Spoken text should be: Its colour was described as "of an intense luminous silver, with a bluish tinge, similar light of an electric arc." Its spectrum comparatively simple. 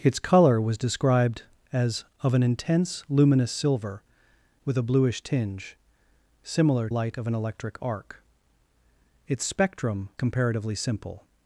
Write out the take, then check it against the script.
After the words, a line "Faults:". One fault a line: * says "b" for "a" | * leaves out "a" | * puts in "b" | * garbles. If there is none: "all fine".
Its colour was described as "of an intense luminous silver, with a bluish tinge, similar light of an electric arc." Its spectrum comparatively simple.
Faults:
all fine